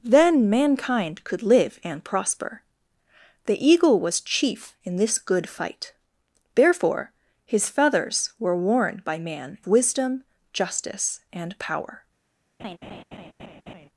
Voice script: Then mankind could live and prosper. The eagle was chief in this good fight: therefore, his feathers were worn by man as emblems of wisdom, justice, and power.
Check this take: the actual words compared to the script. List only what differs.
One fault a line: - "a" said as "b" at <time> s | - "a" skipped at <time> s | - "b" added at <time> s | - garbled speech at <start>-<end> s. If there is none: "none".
- "as emblems of" skipped at 9.6 s